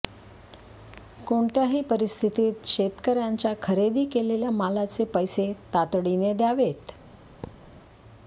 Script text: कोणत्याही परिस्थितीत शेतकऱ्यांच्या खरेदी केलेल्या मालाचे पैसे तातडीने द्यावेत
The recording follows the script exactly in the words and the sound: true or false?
false